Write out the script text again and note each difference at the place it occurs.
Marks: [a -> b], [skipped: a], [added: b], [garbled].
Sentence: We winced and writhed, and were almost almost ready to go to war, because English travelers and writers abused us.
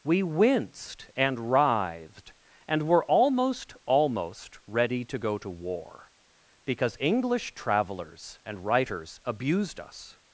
We winced and writhed, and were almost almost ready to go to war, because English travelers and writers abused us.